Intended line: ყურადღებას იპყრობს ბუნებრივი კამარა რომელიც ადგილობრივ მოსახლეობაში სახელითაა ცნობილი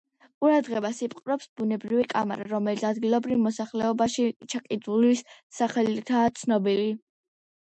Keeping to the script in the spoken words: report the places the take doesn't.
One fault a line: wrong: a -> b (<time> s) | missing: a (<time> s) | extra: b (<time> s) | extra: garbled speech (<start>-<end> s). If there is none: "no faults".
extra: ჩაკიდულის (4.5 s)